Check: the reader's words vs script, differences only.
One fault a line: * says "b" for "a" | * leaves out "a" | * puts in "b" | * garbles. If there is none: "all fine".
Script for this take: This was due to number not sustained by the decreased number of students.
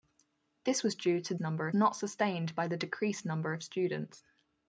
all fine